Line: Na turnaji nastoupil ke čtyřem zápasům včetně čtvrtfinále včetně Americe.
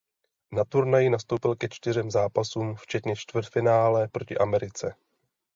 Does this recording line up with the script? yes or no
no